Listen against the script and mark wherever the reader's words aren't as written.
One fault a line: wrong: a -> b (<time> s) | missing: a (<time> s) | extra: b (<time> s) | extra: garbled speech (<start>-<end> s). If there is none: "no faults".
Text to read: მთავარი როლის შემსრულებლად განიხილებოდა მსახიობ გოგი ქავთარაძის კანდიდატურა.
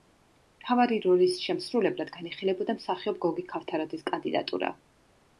no faults